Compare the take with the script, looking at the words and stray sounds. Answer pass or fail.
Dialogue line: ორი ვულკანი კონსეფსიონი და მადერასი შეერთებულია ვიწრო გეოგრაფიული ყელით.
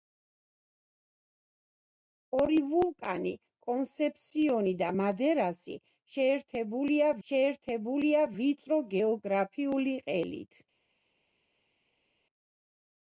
fail